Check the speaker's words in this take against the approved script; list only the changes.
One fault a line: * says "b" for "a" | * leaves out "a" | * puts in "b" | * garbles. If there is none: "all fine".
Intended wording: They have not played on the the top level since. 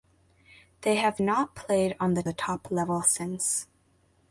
all fine